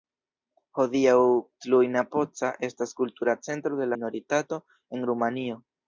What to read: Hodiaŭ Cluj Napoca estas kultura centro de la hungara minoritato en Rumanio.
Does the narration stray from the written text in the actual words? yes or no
yes